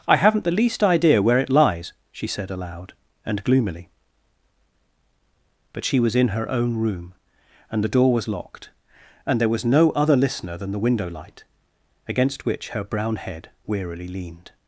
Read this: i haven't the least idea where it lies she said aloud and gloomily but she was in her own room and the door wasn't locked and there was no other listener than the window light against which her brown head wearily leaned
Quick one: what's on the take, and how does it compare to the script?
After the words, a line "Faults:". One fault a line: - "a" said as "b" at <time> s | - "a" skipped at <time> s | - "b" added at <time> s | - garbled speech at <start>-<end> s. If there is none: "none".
i haven't the least idea where it lies she said aloud and gloomily but she was in her own room and the door was locked and there was no other listener than the window light against which her brown head wearily leaned
Faults:
- "wasn't" said as "was" at 8.1 s